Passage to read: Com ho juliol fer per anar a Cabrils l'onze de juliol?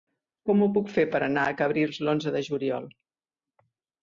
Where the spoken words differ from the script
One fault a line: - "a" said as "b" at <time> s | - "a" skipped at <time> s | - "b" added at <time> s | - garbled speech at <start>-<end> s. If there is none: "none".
- "juliol" said as "puc" at 0.7 s